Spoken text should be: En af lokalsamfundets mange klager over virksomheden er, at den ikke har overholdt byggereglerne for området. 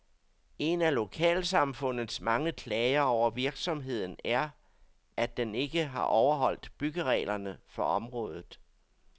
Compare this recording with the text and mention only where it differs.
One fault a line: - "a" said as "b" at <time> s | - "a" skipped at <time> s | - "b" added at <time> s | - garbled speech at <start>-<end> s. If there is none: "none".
none